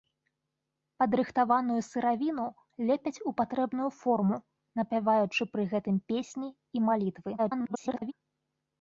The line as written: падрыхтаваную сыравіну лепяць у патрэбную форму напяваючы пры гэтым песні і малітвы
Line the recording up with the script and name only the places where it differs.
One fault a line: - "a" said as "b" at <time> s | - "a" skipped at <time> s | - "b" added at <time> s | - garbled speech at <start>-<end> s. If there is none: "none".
- garbled speech at 7.4-8.1 s